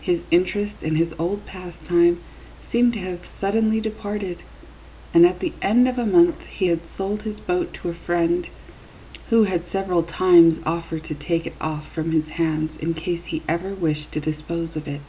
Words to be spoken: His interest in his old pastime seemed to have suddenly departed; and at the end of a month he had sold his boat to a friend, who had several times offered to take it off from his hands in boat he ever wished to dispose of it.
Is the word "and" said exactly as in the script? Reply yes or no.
yes